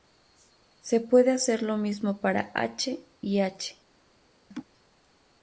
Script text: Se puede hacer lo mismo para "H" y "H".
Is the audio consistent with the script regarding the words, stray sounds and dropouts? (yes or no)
no